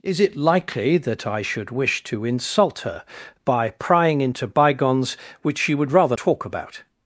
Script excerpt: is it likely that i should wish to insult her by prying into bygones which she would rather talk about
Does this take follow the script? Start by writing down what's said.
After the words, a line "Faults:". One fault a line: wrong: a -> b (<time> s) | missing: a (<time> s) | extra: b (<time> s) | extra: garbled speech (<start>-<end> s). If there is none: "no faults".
is it likely that i should wish to insult her by prying into bygones which she would rather talk about
Faults:
no faults